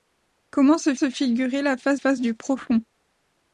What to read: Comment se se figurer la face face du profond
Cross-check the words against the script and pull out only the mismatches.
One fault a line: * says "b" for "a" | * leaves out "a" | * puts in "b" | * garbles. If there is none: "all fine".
all fine